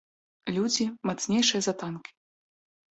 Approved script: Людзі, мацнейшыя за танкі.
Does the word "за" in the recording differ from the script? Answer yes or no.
no